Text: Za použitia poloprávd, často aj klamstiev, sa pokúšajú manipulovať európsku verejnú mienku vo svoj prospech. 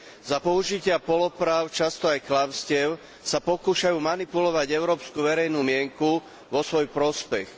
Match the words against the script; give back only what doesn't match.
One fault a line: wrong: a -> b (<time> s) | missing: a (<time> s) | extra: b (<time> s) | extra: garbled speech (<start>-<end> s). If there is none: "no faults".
no faults